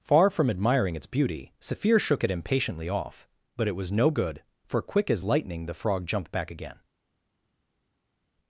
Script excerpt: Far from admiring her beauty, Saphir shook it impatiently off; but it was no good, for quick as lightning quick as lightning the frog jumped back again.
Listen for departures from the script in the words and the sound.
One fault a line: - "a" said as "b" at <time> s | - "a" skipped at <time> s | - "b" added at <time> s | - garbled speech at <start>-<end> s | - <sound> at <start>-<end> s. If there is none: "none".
- "her" said as "its" at 0.9 s
- "quick as lightning" skipped at 5.7 s